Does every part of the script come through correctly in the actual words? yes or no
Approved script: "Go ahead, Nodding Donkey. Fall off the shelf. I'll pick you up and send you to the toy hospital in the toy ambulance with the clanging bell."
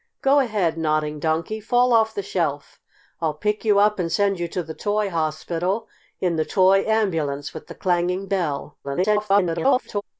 no